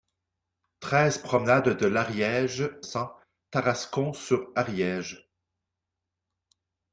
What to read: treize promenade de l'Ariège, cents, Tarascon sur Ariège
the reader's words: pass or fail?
pass